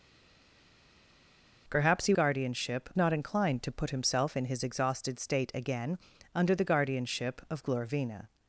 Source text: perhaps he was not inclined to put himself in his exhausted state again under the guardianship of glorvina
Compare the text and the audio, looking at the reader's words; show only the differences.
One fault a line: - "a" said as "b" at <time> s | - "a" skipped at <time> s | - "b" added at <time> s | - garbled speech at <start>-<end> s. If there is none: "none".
- "was" said as "guardianship" at 2.1 s